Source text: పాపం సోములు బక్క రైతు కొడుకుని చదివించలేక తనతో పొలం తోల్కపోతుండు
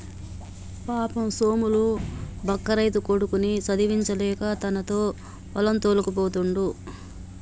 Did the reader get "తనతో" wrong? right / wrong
right